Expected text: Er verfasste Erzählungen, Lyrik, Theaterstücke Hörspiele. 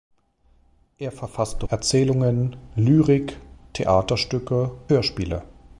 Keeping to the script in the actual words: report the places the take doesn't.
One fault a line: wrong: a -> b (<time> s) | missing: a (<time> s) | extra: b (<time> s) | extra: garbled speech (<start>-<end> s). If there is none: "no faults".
no faults